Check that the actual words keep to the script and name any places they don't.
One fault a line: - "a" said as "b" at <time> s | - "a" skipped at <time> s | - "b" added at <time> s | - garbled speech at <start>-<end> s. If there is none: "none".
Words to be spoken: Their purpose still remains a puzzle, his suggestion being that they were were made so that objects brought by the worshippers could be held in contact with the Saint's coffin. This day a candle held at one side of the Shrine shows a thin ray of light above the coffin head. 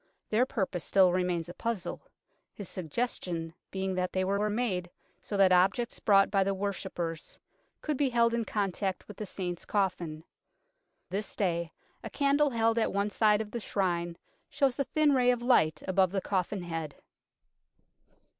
none